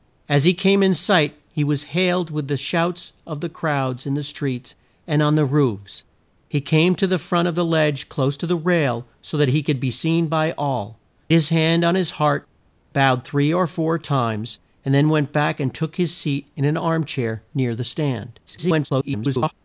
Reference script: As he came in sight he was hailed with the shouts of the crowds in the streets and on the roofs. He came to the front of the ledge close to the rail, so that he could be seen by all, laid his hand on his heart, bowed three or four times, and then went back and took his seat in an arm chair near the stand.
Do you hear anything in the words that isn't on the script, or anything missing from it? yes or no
yes